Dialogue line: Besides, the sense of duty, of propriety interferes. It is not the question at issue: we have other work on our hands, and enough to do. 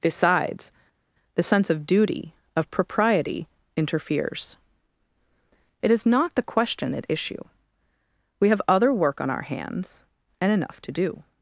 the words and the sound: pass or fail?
pass